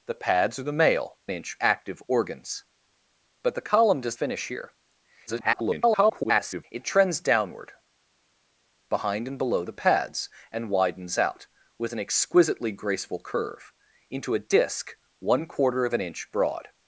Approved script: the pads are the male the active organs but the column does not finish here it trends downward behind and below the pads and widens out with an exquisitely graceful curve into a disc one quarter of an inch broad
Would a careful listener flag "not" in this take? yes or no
yes